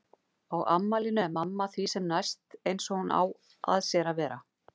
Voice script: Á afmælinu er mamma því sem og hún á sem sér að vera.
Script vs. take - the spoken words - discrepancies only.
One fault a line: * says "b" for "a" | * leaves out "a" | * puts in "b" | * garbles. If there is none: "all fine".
* puts in "næst eins"
* says "að" for "sem"